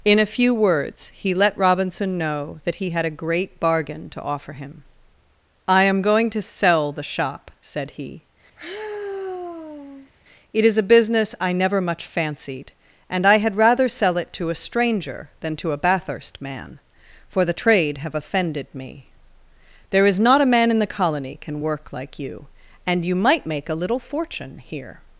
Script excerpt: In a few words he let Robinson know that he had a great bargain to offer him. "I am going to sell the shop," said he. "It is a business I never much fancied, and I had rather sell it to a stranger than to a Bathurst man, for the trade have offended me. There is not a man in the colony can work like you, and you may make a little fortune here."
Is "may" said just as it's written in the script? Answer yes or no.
no